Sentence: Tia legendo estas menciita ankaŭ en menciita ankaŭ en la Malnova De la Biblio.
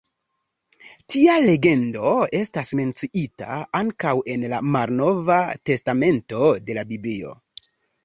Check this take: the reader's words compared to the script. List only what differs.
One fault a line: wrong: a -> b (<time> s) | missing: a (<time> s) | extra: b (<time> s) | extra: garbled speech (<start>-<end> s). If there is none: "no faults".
missing: menciita ankaŭ en (4.5 s)
extra: Testamento (5.7 s)